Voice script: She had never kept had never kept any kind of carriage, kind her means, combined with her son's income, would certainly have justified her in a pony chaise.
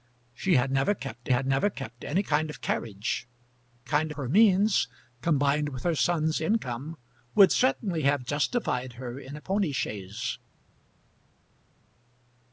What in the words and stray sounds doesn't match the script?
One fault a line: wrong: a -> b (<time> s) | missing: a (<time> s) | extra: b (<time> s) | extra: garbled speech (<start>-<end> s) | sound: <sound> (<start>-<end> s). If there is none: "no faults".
no faults